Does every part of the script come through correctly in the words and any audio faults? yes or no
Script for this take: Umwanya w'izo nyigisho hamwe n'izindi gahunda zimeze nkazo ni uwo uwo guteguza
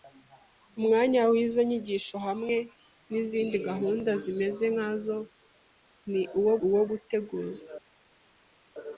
yes